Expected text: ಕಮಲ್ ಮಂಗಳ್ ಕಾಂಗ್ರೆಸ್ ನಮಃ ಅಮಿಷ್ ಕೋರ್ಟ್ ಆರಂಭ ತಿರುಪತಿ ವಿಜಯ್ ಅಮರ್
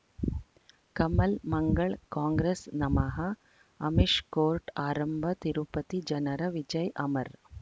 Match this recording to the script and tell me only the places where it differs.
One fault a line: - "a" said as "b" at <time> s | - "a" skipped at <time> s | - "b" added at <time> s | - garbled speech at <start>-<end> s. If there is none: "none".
- "ಜನರ" added at 6.1 s